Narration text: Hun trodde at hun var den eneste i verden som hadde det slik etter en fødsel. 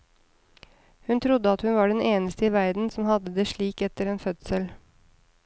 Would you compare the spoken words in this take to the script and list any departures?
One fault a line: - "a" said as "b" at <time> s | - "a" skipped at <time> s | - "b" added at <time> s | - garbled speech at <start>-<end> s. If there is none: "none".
none